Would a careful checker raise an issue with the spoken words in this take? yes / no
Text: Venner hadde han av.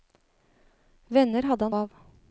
no